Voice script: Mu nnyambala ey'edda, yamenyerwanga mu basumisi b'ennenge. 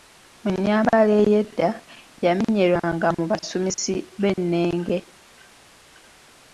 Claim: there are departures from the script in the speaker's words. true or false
false